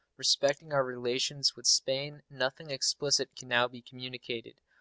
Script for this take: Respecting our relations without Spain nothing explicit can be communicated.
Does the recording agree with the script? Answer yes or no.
no